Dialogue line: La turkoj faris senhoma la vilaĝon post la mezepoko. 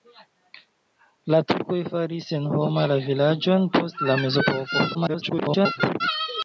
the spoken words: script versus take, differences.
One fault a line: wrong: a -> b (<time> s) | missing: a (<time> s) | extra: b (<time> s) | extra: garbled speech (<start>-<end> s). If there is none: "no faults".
extra: garbled speech (4.9-6.0 s)